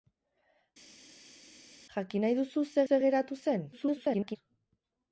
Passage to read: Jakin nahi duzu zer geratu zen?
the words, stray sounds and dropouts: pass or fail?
fail